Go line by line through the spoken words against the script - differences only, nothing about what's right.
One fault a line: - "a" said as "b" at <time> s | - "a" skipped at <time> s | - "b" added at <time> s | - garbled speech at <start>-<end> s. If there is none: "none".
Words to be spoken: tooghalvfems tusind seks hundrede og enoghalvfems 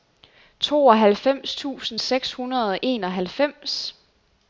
none